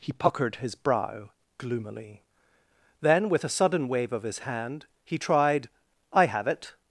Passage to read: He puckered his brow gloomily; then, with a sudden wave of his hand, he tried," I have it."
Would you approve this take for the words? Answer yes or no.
yes